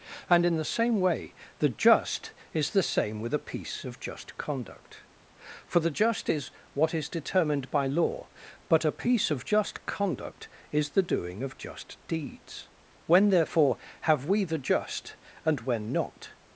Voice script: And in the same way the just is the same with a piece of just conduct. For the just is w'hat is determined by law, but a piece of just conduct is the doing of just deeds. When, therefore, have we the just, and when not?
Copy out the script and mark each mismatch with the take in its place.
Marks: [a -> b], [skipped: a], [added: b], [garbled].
And in the same way the just is the same with a piece of just conduct. For the just is w'hat is determined by law, but a piece of just conduct is the doing of just deeds. When, therefore, have we the just, and when not?